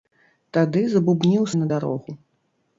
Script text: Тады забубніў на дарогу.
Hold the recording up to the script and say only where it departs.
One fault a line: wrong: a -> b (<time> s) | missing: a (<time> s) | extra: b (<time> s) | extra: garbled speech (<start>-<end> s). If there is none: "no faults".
no faults